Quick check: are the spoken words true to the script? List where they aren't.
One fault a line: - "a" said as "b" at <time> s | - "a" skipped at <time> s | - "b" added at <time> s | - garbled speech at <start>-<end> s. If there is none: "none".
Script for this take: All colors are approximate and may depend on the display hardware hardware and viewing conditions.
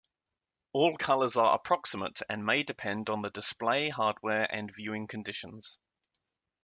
- "hardware" skipped at 4.5 s